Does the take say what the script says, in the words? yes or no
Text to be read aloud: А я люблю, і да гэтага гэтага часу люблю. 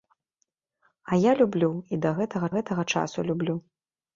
yes